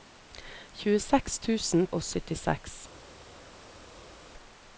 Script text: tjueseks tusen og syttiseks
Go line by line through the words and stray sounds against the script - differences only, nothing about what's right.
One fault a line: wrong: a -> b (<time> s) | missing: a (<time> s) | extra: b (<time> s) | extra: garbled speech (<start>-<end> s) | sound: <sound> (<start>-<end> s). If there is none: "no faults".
no faults